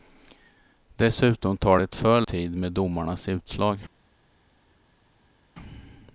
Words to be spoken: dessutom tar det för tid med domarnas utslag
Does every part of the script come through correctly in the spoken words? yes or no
yes